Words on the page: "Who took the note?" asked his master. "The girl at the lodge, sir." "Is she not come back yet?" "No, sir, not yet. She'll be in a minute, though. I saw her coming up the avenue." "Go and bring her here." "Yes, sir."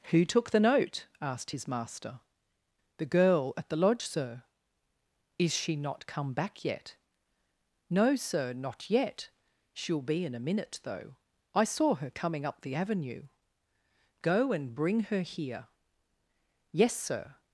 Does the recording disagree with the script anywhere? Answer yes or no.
no